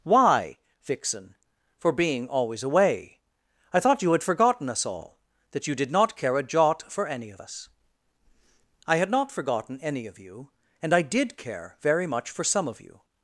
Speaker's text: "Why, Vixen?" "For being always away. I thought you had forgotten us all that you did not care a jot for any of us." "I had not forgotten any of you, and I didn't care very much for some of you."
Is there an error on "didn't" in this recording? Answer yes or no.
yes